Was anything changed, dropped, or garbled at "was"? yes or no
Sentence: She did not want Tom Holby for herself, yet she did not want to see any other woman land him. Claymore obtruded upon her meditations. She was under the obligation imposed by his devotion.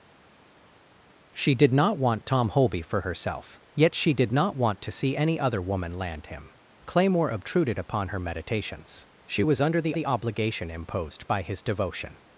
no